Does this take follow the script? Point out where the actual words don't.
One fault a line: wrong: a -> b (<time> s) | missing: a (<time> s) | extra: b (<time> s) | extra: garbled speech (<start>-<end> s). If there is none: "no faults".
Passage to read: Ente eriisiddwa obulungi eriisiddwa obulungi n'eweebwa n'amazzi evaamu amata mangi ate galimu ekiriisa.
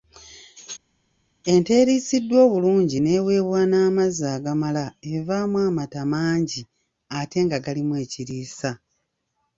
missing: eriisiddwa obulungi (3.0 s)
extra: agamala (4.3 s)
extra: nga (7.4 s)